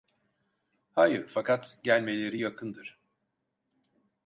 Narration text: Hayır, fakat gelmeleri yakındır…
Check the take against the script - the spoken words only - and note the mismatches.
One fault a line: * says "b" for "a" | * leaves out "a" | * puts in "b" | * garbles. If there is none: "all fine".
all fine